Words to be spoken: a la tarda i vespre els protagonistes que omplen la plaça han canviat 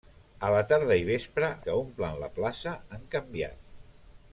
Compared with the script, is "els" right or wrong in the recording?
wrong